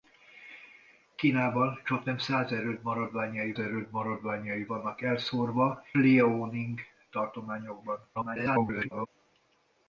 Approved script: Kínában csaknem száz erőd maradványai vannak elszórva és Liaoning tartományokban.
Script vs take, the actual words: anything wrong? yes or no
yes